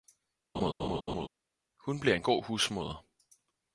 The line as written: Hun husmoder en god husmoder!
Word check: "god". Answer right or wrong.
right